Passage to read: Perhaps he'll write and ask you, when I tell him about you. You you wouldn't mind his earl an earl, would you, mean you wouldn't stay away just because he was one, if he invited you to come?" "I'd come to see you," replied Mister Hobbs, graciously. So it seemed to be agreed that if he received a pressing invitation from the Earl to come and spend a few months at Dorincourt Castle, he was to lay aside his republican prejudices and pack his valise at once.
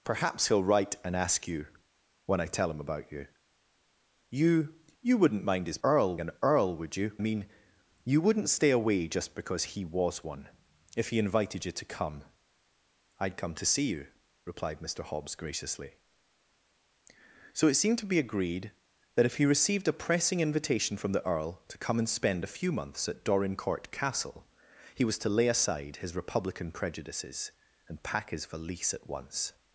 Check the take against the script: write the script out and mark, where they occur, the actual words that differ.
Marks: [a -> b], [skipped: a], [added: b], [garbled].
Perhaps he'll write and ask you, when I tell him about you. You you wouldn't mind his earl an earl, would you, mean you wouldn't stay away just because he was one, if he invited you to come?" "I'd come to see you," replied Mister Hobbs, graciously. So it seemed to be agreed that if he received a pressing invitation from the Earl to come and spend a few months at Dorincourt Castle, he was to lay aside his republican prejudices and pack his valise at once.